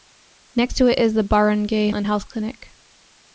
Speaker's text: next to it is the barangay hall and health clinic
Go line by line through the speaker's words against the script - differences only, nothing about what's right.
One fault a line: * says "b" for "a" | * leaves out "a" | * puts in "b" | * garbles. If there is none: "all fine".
* leaves out "hall"